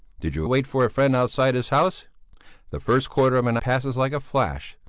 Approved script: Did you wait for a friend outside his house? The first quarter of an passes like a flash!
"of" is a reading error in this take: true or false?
false